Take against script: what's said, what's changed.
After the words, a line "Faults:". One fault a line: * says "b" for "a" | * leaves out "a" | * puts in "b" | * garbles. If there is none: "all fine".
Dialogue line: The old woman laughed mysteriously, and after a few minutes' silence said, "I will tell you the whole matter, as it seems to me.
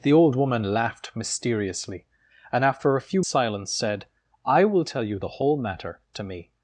The old woman laughed mysteriously, and after a few' silence said, "I will tell you the whole matter, to me.
Faults:
* leaves out "minutes"
* leaves out "as it seems"